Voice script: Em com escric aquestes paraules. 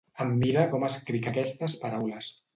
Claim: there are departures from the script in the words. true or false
true